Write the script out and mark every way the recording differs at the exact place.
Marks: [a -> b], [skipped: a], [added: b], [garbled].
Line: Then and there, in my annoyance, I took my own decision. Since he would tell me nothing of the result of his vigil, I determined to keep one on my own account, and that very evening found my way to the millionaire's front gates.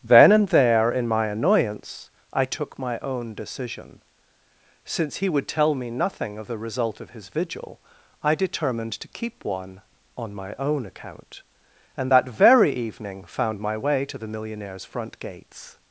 Then and there, in my annoyance, I took my own decision. Since he would tell me nothing of the result of his vigil, I determined to keep one on my own account, and that very evening found my way to the millionaire's front gates.